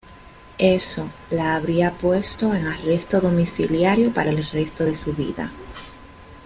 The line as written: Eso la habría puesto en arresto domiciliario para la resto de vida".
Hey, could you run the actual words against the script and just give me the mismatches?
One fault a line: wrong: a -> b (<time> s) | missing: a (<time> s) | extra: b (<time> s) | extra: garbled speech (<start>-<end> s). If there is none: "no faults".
wrong: la -> el (4.3 s)
extra: su (4.9 s)